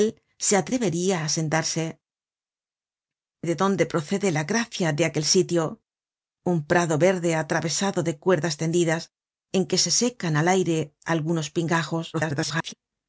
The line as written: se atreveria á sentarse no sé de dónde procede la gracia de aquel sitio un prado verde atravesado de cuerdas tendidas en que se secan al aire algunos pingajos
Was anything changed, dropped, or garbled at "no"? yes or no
yes